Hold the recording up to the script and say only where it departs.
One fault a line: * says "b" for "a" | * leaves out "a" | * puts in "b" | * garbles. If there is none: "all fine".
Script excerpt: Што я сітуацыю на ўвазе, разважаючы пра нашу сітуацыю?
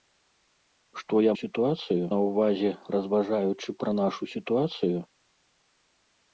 all fine